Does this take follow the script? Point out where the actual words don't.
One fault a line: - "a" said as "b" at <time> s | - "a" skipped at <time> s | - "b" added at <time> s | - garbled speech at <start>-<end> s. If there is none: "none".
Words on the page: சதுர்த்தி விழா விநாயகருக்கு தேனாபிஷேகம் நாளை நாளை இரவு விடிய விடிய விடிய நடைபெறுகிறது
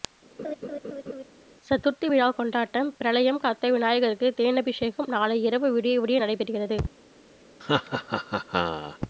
- "கொண்டாட்டம் பிரளயம் காத்த" added at 2.3 s
- "நாளை" skipped at 5.4 s
- "விடிய" skipped at 6.2 s